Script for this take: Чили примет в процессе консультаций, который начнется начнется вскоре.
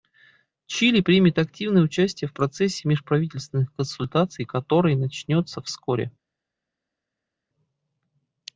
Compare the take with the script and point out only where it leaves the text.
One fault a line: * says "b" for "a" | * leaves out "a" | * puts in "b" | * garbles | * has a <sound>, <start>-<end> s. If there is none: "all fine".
* puts in "активное участие"
* puts in "межправительственных"
* leaves out "начнется"